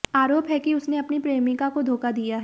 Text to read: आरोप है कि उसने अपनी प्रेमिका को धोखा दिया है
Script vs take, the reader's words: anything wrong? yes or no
no